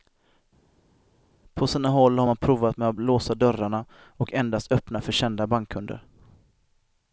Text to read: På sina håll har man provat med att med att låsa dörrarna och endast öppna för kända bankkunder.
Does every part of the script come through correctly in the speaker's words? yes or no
no